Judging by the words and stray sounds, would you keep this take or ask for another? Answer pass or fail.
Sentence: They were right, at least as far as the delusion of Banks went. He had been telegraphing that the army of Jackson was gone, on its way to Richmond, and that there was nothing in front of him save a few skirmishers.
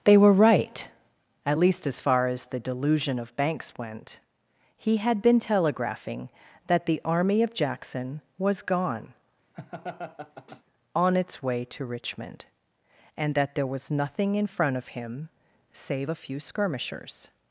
fail